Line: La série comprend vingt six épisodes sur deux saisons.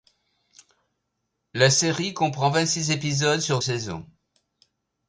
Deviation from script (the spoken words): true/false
true